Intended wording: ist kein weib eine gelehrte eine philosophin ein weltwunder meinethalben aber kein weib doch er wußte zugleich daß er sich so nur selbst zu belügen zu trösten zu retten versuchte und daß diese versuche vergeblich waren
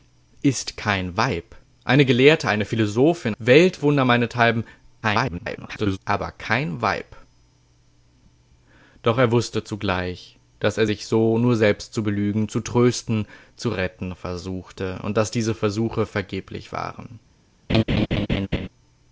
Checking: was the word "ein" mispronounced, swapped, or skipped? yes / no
yes